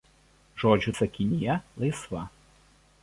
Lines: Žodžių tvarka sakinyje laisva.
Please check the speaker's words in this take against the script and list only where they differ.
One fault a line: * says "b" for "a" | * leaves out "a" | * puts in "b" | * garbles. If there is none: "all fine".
* leaves out "tvarka"